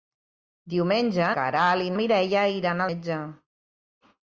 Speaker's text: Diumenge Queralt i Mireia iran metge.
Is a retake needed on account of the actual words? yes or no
no